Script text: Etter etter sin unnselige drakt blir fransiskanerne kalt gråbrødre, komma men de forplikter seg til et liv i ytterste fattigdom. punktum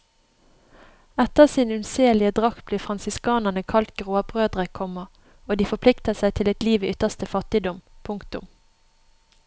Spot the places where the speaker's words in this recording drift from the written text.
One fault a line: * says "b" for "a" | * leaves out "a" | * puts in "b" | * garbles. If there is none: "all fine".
* leaves out "etter"
* says "og" for "men"